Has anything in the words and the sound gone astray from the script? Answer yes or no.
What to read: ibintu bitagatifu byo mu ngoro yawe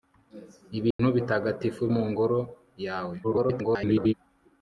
yes